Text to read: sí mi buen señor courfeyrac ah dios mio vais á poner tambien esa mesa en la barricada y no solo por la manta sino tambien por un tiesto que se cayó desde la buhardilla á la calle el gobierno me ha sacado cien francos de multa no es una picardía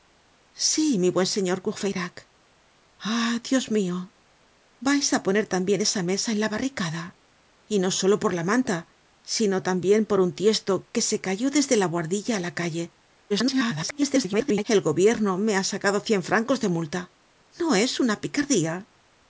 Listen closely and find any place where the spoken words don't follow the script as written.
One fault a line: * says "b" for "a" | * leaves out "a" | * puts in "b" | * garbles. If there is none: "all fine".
* garbles